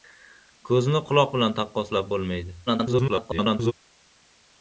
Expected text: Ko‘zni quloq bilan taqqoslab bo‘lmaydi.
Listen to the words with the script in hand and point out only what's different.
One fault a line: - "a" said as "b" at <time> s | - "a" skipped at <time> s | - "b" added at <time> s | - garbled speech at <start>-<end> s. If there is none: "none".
- garbled speech at 2.7-3.7 s